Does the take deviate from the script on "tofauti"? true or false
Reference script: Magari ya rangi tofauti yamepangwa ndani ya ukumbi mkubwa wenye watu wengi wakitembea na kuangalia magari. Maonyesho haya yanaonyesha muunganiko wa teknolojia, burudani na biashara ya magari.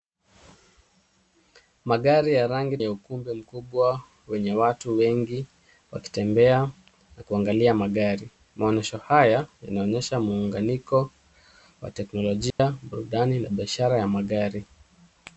true